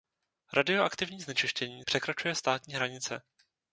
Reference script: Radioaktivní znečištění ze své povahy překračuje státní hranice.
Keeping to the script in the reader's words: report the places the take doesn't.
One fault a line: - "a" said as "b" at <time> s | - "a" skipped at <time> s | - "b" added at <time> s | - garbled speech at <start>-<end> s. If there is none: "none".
- "ze své povahy" skipped at 1.8 s